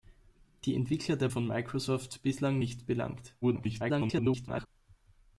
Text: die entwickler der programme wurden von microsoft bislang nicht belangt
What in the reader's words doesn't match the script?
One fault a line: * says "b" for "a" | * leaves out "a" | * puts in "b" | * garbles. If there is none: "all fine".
* leaves out "programme wurden"
* garbles